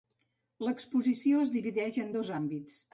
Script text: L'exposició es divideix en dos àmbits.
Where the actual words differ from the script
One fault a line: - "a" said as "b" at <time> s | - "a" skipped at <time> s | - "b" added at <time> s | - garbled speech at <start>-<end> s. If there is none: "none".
none